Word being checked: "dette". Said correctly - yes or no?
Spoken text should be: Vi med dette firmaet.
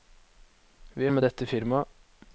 yes